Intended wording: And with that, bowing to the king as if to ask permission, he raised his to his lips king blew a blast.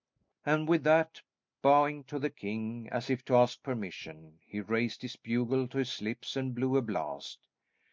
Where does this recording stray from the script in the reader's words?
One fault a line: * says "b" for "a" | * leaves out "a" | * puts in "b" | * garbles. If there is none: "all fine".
* puts in "bugle"
* says "and" for "king"